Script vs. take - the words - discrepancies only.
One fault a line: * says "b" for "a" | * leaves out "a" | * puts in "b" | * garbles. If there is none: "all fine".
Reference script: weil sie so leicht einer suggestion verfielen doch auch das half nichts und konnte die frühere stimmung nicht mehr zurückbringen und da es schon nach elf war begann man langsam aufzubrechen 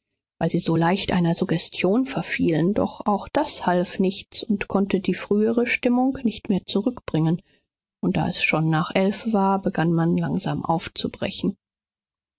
all fine